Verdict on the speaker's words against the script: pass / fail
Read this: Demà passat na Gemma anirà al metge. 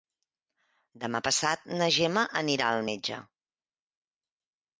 pass